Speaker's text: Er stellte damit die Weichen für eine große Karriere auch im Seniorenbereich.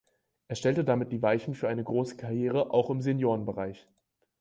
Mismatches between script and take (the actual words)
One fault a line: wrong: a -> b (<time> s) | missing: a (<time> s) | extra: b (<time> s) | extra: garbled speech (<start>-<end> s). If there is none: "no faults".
no faults